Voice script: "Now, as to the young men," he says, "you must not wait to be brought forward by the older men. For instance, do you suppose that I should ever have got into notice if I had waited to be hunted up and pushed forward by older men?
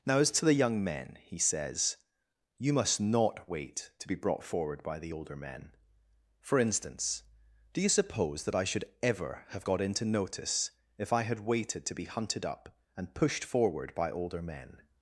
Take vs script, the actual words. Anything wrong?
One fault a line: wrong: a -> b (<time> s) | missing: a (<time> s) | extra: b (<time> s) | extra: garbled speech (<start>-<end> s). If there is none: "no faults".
no faults